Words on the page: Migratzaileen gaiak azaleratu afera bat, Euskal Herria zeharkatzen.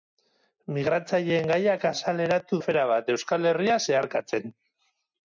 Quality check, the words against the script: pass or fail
pass